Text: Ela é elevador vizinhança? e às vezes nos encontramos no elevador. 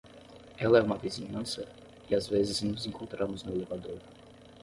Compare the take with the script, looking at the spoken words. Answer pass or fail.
fail